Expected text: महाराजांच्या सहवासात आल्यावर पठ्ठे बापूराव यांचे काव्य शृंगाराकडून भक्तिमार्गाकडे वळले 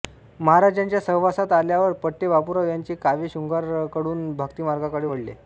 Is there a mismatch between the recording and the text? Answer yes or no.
no